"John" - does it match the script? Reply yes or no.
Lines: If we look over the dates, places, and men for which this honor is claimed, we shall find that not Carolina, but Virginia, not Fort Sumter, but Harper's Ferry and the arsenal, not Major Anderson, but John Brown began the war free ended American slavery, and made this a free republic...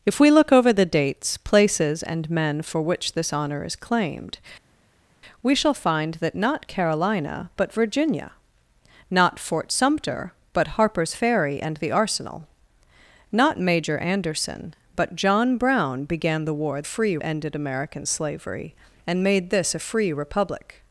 yes